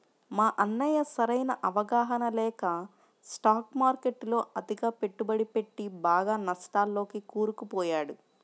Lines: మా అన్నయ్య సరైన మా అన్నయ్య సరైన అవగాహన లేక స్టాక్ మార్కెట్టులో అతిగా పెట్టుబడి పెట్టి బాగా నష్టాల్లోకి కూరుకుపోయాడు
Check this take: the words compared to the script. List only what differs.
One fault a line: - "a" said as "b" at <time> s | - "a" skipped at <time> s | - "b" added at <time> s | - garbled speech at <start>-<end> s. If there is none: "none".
- "మా అన్నయ్య సరైన" skipped at 1.5 s